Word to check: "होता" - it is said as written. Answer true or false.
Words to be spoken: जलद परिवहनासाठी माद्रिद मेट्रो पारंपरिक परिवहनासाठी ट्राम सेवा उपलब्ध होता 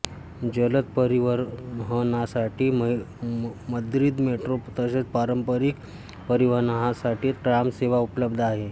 false